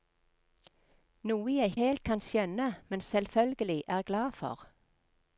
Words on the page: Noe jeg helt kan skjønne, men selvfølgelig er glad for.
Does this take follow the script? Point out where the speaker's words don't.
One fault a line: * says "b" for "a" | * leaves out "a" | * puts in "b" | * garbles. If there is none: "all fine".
all fine